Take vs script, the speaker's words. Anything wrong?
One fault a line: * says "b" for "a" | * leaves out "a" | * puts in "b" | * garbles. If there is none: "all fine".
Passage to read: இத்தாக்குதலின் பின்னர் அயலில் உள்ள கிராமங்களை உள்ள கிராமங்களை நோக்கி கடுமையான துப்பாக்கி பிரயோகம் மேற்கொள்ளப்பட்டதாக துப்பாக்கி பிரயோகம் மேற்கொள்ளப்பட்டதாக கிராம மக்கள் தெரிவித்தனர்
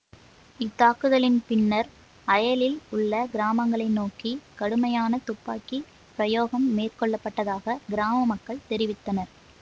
* leaves out "உள்ள கிராமங்களை"
* leaves out "துப்பாக்கி பிரயோகம் மேற்கொள்ளப்பட்டதாக"